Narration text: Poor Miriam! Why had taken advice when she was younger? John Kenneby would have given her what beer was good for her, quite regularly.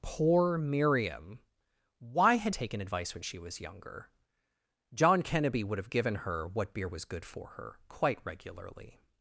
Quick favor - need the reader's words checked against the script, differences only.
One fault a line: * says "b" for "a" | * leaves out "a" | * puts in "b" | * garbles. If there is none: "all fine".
all fine